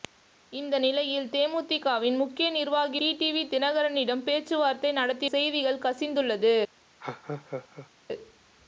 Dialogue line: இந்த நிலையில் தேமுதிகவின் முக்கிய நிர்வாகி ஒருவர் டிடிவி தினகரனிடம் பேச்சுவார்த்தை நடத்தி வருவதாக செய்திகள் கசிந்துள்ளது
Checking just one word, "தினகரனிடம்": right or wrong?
right